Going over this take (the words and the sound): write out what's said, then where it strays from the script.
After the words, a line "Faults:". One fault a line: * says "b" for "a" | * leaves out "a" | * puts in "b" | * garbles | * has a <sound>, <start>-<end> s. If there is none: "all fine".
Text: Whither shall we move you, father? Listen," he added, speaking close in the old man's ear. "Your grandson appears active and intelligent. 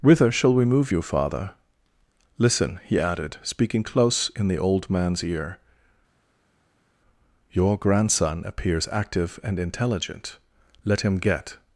Whither shall we move you, father? Listen," he added, speaking close in the old man's ear. "Your grandson appears active and intelligent. Let him get
Faults:
* puts in "Let him get"